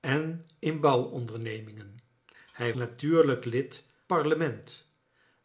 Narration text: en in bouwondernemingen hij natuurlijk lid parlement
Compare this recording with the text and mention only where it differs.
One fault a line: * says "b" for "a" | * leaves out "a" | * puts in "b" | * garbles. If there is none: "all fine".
all fine